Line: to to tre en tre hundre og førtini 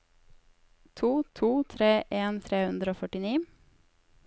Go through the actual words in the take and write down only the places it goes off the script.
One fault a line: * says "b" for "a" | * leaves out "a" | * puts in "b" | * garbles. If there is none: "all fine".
all fine